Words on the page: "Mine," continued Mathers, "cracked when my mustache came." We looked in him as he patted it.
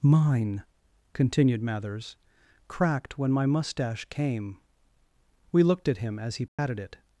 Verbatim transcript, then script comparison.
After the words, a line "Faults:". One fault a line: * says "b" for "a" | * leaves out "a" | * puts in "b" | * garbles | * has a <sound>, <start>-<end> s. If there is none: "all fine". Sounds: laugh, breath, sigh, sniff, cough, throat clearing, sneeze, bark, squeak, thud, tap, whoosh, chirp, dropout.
"Mine," continued Mathers, "cracked when my mustache came." We looked at him as he patted it.
Faults:
* says "at" for "in"
* has a dropout, 6.5-6.6 s